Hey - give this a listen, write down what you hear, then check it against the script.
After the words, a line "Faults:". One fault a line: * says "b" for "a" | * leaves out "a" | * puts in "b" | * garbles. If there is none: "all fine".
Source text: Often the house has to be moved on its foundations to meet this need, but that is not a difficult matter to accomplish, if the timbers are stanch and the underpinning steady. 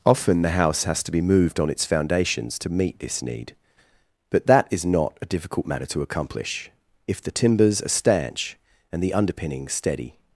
Often the house has to be moved on its foundations to meet this need, but that is not a difficult matter to accomplish, if the timbers are stanch and the underpinning steady.
Faults:
all fine